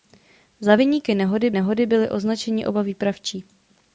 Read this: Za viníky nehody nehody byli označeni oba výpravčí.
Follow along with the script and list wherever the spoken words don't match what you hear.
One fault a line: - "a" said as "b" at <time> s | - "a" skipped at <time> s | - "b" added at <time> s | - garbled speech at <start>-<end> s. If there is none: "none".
none